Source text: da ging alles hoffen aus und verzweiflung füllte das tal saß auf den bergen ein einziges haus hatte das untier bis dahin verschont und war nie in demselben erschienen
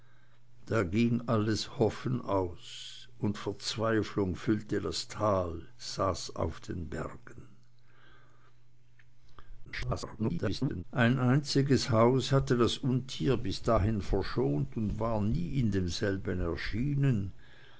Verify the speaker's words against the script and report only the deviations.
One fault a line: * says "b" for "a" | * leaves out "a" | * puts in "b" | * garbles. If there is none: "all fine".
* garbles